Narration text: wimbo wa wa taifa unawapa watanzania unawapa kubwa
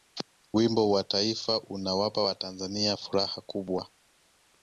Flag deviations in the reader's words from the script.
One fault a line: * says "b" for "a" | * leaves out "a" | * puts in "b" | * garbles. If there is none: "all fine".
* leaves out "wa"
* says "furaha" for "unawapa"